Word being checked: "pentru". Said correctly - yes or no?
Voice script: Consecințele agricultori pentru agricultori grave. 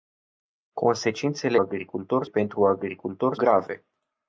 yes